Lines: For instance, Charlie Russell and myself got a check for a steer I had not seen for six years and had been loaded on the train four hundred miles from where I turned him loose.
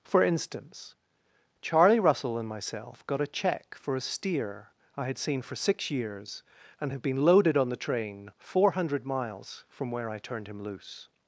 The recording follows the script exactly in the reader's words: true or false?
false